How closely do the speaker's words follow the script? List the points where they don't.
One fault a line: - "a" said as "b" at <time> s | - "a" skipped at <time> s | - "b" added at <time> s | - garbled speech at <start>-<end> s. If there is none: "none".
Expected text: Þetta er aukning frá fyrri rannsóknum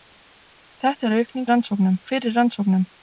- "frá" said as "rannsóknum" at 1.5 s